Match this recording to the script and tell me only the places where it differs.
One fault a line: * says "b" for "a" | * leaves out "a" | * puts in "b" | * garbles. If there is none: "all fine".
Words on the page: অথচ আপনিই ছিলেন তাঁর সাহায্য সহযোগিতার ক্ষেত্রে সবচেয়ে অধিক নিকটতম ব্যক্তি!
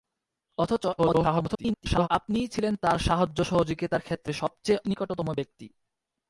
* garbles
* leaves out "অধিক"